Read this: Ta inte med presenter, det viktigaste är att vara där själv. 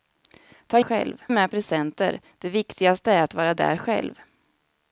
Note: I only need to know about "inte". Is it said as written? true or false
false